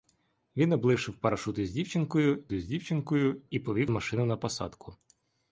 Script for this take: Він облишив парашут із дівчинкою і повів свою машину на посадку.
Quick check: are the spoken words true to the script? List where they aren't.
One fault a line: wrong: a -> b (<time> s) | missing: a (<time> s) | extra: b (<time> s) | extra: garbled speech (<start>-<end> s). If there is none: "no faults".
extra: із дівчинкою (2.5 s)
missing: свою (3.9 s)